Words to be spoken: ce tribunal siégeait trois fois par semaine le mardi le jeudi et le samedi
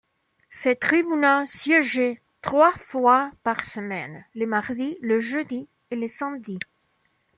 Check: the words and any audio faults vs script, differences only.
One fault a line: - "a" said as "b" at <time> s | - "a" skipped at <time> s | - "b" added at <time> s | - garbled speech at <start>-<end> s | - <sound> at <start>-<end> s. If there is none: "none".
none